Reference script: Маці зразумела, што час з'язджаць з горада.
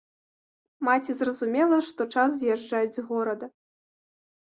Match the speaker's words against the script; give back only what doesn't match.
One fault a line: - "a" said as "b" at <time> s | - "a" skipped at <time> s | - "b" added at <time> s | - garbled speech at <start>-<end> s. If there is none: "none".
none